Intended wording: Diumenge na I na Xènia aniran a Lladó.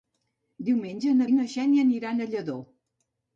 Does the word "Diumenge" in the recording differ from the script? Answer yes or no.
no